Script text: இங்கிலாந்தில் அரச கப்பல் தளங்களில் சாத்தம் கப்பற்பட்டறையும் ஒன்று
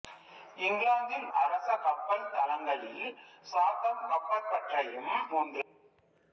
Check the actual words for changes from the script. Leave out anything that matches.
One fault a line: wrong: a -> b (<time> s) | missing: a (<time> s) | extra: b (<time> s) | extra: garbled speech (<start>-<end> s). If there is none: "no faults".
no faults